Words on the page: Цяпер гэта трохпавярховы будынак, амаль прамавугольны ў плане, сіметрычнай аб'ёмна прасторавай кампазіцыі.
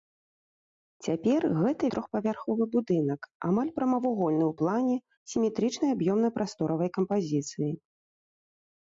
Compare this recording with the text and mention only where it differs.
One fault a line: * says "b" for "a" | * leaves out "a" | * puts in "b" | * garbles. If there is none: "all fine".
all fine